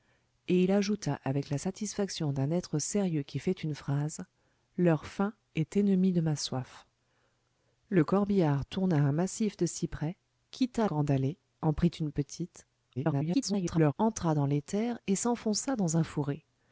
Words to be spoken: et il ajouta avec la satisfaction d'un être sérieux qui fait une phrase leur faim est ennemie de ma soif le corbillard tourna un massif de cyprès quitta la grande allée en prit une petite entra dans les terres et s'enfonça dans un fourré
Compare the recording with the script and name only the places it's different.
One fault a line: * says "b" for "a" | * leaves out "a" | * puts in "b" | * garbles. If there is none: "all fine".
* leaves out "la"
* garbles